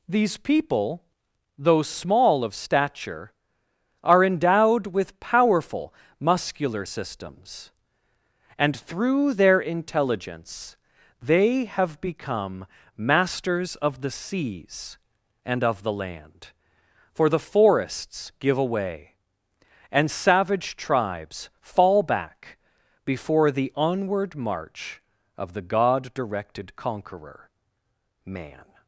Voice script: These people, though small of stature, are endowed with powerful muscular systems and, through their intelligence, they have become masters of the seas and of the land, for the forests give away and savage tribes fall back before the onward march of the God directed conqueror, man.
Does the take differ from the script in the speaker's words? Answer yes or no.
no